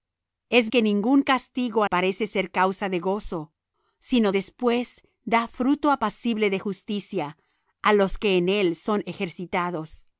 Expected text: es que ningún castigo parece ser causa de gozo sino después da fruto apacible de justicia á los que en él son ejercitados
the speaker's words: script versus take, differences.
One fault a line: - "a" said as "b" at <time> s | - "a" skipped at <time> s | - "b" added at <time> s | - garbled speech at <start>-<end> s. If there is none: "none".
none